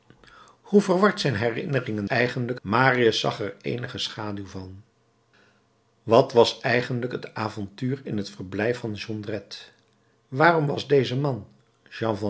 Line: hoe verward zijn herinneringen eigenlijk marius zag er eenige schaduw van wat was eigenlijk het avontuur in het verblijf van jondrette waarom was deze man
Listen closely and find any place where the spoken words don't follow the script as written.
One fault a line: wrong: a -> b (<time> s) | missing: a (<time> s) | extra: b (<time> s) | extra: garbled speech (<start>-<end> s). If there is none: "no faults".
no faults